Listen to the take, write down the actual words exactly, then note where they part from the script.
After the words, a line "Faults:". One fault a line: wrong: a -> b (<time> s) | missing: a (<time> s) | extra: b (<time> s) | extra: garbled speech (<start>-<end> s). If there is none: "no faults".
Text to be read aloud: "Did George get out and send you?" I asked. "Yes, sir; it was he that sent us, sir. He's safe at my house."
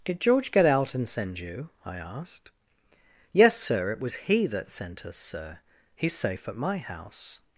"Did George get out and send you?" I asked. "Yes, sir; it was he that sent us, sir. He's safe at my house."
Faults:
no faults